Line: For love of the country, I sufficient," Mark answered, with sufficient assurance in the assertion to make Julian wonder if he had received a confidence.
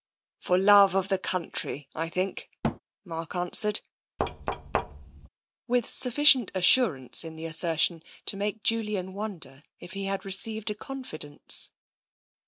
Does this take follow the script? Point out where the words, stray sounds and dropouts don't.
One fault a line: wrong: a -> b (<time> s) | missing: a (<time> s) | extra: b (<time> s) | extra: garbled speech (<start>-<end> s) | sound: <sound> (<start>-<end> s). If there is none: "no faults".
wrong: sufficient -> think (2.1 s)
sound: thud (2.6-2.8 s)
sound: thud (4.2-5.3 s)